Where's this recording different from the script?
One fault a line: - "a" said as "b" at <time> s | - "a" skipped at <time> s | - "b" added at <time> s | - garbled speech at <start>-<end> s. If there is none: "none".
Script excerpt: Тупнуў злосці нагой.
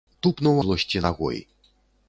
none